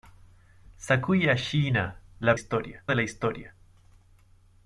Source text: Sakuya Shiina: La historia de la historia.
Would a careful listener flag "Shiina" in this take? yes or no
no